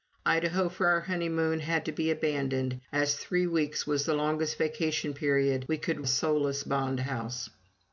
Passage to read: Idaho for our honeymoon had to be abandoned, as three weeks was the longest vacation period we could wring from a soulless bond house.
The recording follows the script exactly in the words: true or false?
false